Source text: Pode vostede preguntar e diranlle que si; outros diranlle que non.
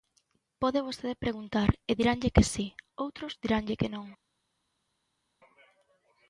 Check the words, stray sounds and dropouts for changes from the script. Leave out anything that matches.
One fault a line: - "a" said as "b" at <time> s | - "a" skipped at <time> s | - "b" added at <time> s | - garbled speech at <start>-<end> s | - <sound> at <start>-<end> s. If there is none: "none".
none